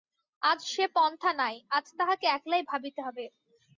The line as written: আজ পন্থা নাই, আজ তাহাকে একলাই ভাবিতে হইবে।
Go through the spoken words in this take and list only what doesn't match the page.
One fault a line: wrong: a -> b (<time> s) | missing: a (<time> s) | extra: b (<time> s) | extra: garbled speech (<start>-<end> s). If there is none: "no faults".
extra: সে (0.7 s)